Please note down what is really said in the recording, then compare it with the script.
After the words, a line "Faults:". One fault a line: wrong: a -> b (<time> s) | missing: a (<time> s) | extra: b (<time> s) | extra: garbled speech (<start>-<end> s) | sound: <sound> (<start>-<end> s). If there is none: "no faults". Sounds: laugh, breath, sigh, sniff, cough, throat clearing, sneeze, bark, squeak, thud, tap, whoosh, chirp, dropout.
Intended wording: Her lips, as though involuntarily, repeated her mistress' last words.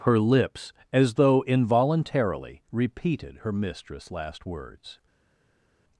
Her lips, as though involuntarily, repeated her mistress' last words.
Faults:
no faults